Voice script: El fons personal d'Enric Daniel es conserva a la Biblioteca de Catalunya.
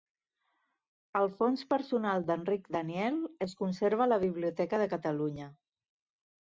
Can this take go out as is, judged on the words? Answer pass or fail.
pass